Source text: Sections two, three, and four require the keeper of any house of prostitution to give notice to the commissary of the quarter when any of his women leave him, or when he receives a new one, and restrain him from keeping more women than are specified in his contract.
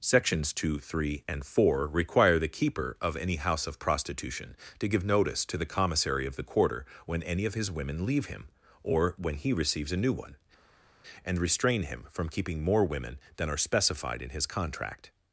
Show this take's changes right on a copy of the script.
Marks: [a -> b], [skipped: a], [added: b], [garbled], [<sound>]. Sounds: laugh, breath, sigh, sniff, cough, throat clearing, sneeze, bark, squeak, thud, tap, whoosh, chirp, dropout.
Sections two, three, and four require the keeper of any house of prostitution to give notice to the commissary of the quarter when any of his women leave him, or when he receives a new one, and restrain him from keeping more women than are specified in his contract.